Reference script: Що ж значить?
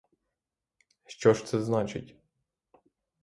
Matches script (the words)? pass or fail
fail